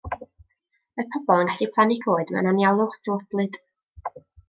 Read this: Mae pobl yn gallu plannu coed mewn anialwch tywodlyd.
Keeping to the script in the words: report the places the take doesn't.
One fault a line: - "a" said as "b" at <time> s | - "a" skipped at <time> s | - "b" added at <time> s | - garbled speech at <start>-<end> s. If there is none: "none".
none